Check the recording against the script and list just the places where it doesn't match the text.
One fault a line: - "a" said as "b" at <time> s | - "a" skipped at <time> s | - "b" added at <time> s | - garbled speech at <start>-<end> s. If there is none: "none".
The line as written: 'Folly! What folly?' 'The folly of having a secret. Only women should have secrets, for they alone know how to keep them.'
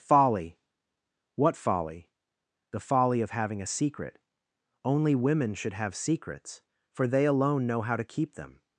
none